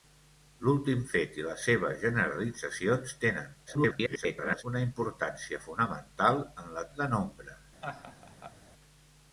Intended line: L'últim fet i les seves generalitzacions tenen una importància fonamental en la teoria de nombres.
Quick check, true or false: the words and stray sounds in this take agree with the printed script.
false